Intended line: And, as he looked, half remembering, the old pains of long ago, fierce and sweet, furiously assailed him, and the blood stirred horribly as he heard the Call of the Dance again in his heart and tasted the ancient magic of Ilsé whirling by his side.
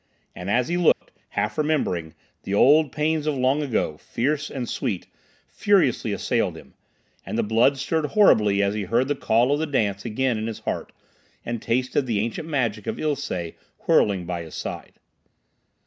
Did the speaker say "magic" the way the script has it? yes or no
yes